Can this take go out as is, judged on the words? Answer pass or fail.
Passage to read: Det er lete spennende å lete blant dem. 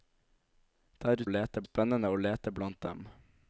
pass